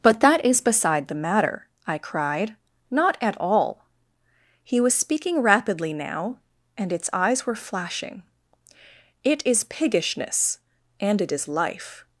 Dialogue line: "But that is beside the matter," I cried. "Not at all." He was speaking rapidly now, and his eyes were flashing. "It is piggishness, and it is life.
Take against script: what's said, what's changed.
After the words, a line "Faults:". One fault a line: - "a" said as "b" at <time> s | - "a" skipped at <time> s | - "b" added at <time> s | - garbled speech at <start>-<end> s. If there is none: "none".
"But that is beside the matter," I cried. "Not at all." He was speaking rapidly now, and its eyes were flashing. "It is piggishness, and it is life.
Faults:
- "his" said as "its" at 6.9 s